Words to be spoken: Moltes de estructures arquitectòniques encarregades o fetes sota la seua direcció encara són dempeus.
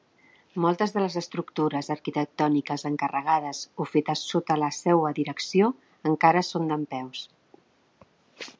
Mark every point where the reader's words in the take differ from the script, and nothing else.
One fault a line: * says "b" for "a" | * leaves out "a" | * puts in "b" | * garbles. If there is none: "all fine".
* puts in "les"